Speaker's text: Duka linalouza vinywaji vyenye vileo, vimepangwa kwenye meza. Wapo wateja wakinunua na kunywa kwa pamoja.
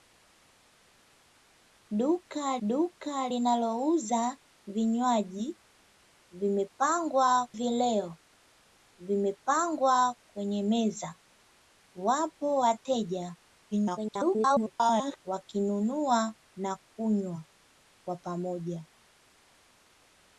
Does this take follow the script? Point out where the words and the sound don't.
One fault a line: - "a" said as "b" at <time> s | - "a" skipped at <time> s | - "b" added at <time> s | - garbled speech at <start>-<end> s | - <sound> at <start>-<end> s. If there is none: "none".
- "duka" added at 2.7 s
- "vyenye" said as "vimepangwa" at 6.3 s
- garbled speech at 13.7-15.2 s